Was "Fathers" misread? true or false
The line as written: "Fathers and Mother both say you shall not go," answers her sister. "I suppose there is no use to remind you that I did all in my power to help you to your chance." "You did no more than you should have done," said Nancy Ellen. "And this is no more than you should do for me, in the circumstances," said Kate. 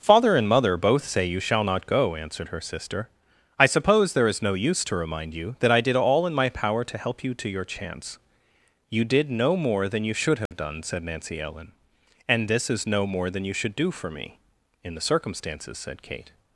true